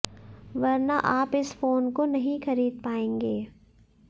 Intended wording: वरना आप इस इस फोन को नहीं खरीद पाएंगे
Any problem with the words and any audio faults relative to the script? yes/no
yes